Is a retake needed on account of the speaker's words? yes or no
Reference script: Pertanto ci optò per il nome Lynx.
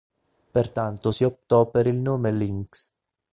yes